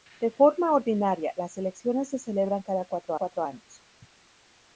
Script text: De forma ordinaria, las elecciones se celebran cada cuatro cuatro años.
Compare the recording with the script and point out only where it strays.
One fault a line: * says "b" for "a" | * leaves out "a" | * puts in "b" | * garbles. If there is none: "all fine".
all fine